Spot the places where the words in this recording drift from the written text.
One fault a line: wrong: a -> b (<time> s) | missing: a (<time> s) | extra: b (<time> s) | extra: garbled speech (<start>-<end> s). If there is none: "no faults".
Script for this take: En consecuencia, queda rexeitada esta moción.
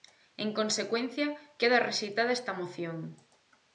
no faults